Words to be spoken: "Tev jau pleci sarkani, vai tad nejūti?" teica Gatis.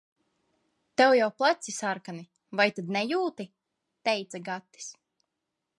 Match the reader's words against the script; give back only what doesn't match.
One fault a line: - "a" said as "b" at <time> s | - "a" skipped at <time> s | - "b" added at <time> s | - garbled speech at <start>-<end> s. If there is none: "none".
none